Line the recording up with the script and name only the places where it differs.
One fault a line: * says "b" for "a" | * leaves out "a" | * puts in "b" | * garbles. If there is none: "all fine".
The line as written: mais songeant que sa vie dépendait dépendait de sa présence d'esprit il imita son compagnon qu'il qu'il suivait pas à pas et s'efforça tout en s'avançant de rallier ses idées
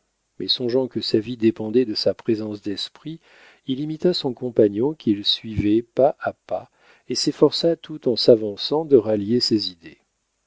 * leaves out "dépendait"
* leaves out "qu'il"